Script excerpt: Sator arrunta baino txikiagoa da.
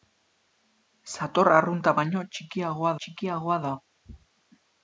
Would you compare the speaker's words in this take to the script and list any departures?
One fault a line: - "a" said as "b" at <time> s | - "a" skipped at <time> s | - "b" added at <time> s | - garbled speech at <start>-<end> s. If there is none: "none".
- "txikiagoa" added at 3.0 s